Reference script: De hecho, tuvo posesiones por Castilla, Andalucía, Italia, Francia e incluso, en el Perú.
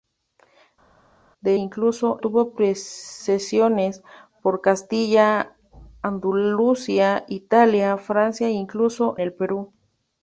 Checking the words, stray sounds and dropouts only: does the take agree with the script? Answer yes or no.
no